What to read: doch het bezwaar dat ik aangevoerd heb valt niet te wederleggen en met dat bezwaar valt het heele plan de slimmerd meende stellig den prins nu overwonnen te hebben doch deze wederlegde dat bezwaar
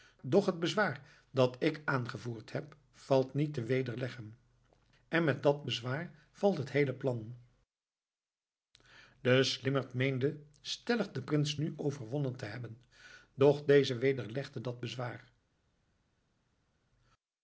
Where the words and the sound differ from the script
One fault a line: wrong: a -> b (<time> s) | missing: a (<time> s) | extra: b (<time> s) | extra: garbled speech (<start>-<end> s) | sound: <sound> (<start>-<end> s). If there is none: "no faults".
no faults